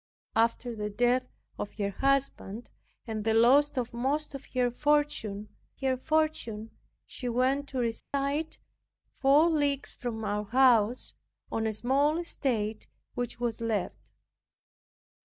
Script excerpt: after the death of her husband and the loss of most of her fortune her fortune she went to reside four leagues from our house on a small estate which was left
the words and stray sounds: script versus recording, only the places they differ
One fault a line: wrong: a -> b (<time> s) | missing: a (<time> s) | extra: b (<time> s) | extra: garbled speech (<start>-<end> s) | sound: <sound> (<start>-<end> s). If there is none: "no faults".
sound: dropout (8.0-8.1 s)